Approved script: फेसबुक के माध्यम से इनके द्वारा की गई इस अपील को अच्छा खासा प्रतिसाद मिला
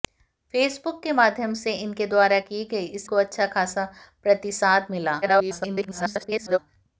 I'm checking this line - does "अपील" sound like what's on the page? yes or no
no